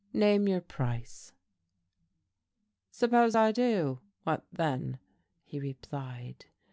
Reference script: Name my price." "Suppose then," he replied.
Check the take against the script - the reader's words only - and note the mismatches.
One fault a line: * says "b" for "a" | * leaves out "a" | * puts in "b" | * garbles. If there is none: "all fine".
* says "your" for "my"
* puts in "I do what"